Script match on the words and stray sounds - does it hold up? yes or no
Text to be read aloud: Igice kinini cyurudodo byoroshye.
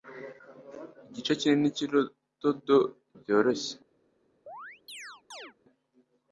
no